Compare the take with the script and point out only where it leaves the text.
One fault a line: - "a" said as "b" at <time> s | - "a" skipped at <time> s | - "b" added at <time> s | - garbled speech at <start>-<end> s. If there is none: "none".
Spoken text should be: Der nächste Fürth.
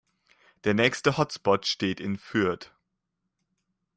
- "Hotspot steht in" added at 1.2 s